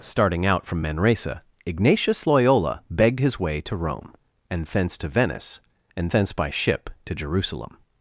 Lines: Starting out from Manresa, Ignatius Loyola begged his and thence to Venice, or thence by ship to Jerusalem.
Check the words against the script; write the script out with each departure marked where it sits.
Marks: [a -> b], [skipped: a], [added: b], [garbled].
Starting out from Manresa, Ignatius Loyola begged his [added: way to Rome] and thence to Venice, [or -> and] thence by ship to Jerusalem.